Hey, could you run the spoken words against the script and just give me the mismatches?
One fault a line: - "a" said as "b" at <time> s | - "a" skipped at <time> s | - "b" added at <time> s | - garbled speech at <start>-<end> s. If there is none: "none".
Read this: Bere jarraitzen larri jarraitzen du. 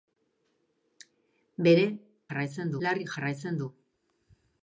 none